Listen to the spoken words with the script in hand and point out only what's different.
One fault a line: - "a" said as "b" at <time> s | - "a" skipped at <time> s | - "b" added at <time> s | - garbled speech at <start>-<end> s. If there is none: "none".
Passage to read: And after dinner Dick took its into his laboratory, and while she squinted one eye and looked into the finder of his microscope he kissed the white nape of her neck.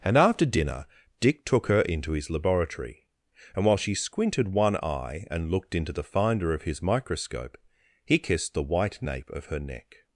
- "its" said as "her" at 1.7 s